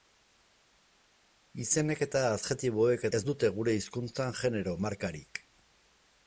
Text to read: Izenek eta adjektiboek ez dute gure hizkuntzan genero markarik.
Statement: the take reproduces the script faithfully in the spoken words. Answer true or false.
true